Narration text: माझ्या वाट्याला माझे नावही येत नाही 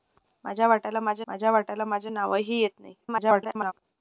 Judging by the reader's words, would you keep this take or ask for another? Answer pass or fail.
fail